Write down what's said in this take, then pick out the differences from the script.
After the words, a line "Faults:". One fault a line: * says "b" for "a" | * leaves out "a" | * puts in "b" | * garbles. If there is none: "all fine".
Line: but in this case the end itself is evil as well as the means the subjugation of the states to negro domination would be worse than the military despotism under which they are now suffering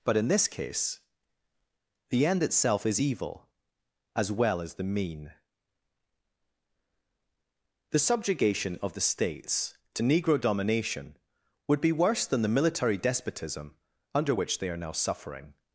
but in this case the end itself is evil as well as the mean the subjugation of the states to negro domination would be worse than the military despotism under which they are now suffering
Faults:
* says "mean" for "means"